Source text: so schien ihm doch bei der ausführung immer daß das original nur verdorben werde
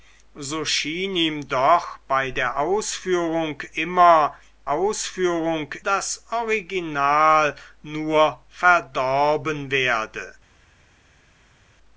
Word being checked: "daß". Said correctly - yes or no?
no